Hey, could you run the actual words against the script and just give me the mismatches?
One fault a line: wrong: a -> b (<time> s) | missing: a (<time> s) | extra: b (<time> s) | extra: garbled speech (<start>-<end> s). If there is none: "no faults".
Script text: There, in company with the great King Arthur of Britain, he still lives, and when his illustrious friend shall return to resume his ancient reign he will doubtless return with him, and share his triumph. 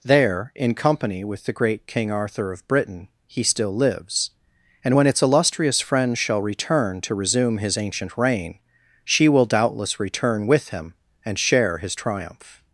wrong: his -> its (5.1 s)
wrong: he -> she (9.1 s)